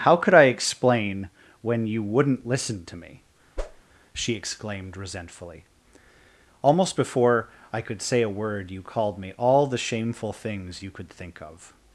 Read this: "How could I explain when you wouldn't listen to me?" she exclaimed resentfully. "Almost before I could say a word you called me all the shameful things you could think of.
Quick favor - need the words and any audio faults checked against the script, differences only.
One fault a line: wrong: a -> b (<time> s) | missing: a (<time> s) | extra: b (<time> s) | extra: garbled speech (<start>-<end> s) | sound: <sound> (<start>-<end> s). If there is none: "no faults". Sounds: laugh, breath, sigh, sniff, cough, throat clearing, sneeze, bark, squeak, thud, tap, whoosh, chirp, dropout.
sound: whoosh (3.6-3.8 s)